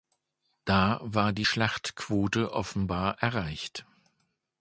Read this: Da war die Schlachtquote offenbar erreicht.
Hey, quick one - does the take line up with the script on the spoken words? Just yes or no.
yes